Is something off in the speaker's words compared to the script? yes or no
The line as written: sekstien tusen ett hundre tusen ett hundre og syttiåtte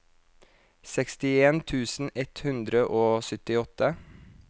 yes